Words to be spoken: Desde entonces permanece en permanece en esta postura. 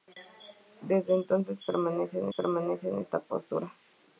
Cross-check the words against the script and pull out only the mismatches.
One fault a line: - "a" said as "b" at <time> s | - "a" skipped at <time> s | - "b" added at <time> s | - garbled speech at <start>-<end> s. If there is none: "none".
none